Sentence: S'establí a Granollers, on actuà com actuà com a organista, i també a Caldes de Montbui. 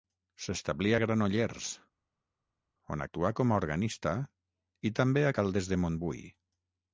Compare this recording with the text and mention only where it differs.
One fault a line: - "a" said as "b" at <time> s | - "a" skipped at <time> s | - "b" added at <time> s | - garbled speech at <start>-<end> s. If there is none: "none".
- "actuà com" skipped at 3.5 s